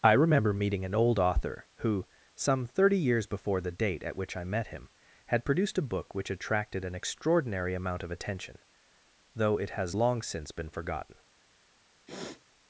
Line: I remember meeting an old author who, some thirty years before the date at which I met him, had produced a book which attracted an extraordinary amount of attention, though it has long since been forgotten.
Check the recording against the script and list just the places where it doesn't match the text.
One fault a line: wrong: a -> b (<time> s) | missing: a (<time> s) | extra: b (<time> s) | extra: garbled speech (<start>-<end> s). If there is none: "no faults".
no faults